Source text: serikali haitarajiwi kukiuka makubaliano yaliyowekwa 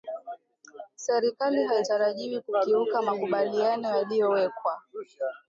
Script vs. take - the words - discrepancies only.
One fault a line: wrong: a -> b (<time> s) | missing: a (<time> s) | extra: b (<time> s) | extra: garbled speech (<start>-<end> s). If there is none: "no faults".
no faults